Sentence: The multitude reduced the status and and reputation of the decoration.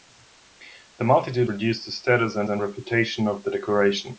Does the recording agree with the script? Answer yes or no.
yes